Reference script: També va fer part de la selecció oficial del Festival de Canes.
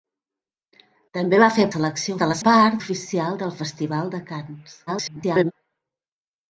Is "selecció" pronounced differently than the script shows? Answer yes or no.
yes